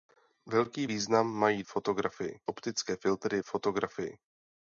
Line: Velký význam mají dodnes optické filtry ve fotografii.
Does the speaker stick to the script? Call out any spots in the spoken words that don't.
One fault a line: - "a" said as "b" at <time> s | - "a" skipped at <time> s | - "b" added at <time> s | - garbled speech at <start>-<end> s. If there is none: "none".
- "dodnes" said as "fotografii" at 1.6 s
- "ve" skipped at 3.4 s